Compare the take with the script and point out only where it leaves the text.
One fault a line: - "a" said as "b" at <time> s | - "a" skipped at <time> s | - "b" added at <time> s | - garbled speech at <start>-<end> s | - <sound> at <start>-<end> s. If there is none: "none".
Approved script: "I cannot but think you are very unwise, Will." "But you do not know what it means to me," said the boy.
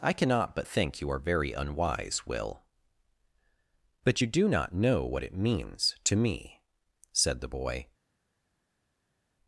none